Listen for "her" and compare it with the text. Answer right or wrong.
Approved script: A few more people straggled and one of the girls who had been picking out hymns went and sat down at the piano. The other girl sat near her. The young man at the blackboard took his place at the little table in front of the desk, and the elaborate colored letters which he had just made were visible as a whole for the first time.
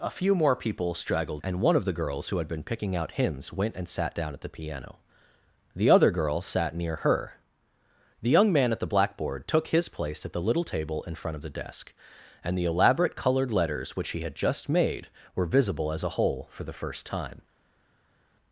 right